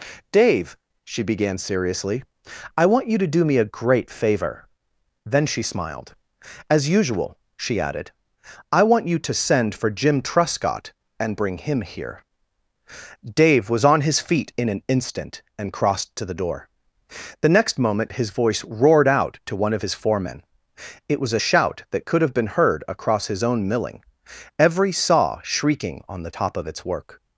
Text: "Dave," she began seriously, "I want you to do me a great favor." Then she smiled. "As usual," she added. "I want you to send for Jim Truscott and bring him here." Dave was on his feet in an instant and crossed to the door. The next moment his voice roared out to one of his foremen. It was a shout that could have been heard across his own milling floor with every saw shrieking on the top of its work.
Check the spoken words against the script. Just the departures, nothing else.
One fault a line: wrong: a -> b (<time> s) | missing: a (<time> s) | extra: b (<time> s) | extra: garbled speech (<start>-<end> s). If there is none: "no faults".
missing: floor with (24.0 s)